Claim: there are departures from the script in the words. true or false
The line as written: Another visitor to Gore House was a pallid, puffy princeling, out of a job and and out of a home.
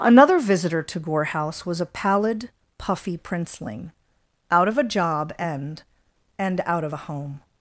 false